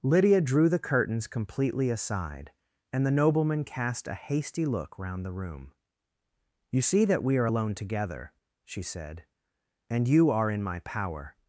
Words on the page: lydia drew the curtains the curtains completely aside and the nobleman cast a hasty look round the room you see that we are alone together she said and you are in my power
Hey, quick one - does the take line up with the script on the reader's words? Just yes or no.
no